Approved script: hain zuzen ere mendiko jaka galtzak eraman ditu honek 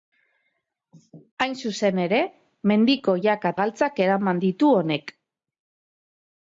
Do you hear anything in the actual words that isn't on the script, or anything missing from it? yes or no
no